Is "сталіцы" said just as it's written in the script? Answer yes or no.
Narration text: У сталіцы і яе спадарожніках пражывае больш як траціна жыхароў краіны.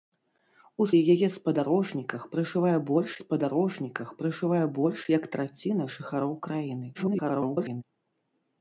no